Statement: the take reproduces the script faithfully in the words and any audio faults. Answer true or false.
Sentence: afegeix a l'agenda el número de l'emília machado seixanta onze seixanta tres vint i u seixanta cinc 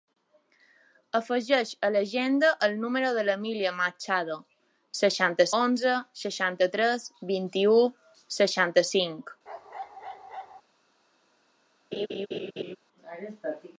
false